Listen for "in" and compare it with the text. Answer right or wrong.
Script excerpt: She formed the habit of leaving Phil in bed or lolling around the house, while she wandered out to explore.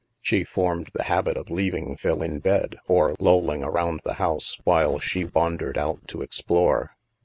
right